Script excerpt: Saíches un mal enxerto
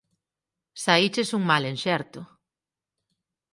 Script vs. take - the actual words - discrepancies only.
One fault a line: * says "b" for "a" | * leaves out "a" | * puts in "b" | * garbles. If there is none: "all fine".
all fine